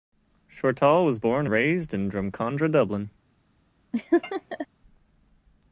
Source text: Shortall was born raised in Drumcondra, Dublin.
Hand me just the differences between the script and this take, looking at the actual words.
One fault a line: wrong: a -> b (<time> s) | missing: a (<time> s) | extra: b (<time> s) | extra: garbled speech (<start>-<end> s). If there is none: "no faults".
no faults